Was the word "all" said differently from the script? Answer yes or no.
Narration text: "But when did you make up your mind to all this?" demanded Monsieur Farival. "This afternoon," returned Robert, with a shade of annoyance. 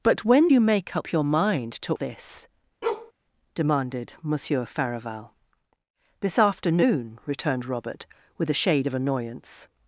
yes